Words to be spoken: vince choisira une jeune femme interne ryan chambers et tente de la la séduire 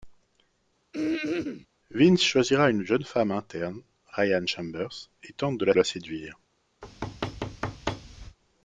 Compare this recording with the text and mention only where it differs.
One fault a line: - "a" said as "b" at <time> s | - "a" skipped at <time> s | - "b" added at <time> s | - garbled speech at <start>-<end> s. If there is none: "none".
none